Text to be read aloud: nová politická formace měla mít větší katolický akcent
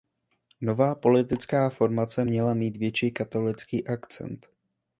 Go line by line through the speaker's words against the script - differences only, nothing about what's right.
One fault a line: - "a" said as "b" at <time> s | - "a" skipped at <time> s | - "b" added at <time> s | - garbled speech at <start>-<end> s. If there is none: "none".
none